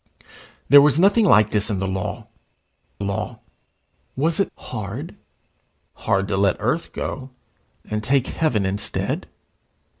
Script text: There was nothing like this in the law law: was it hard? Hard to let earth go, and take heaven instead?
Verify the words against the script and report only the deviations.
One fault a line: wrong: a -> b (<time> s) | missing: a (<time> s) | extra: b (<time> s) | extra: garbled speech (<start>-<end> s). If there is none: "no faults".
no faults